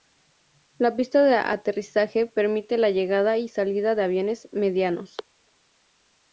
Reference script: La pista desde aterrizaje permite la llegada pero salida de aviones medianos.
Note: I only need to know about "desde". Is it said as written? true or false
false